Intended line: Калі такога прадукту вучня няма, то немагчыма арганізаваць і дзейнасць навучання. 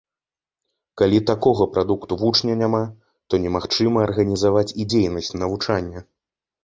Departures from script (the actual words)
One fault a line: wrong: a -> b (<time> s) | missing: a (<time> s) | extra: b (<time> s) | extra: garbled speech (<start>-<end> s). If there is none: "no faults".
no faults